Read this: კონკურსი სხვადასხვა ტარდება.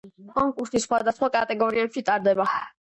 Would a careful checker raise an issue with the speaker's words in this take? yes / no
yes